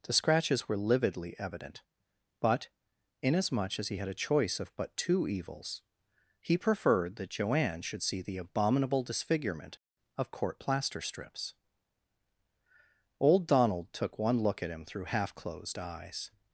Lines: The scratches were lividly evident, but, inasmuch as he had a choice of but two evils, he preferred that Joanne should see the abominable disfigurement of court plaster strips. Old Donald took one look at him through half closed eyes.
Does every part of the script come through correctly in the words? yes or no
yes